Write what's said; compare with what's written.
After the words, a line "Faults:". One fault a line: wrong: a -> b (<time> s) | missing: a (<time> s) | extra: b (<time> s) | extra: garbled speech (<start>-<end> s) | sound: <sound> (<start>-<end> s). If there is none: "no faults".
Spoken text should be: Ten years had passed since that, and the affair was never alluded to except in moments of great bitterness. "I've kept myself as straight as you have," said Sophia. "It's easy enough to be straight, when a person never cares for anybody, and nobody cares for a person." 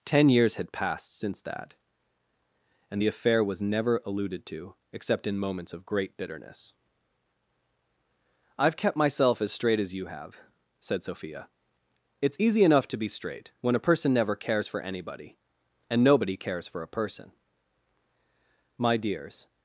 Ten years had passed since that, and the affair was never alluded to except in moments of great bitterness. "I've kept myself as straight as you have," said Sophia. "It's easy enough to be straight, when a person never cares for anybody, and nobody cares for a person." "My dears
Faults:
extra: My dears (18.8 s)